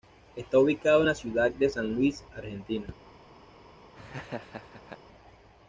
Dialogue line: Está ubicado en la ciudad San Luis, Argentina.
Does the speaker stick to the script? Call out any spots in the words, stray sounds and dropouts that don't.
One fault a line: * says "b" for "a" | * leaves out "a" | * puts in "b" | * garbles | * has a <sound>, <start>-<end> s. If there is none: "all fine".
* puts in "de"
* has a laugh, 3.9-5.0 s